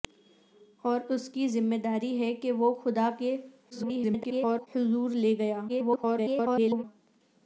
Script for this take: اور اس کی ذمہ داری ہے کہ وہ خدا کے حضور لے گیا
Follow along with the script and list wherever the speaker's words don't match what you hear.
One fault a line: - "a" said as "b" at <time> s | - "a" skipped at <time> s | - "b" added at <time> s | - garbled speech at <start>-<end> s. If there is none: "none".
- garbled speech at 3.7-4.7 s
- garbled speech at 5.7-6.8 s